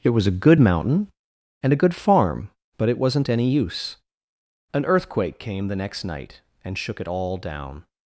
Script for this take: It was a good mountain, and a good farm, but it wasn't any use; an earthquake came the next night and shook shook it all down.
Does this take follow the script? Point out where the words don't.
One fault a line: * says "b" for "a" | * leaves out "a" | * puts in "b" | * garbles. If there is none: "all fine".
* leaves out "shook"